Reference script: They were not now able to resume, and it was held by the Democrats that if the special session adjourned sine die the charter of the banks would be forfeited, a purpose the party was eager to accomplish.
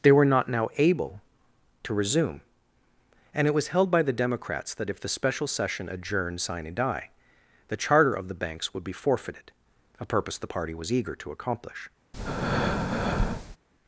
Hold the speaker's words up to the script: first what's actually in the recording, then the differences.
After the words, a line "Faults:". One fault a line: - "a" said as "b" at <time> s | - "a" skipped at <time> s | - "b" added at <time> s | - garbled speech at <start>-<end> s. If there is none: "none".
They were not now able to resume, and it was held by the Democrats that if the special session adjourned sine die the charter of the banks would be forfeited, a purpose the party was eager to accomplish.
Faults:
none